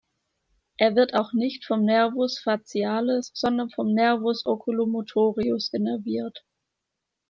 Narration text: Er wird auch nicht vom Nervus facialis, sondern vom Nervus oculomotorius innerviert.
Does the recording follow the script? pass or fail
pass